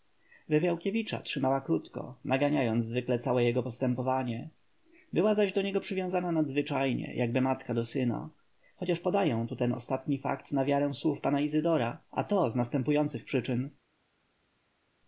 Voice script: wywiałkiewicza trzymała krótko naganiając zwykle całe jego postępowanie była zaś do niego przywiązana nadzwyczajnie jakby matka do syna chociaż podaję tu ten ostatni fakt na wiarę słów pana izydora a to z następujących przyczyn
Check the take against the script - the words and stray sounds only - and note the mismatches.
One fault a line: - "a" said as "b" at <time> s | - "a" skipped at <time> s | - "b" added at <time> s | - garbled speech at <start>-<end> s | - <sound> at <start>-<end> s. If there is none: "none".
none